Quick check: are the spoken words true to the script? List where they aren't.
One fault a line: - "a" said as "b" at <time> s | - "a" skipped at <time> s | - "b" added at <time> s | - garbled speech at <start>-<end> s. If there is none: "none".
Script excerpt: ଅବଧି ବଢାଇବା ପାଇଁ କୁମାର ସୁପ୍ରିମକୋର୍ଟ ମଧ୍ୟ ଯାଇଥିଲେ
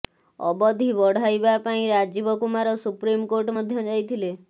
- "ରାଜୀବ" added at 1.9 s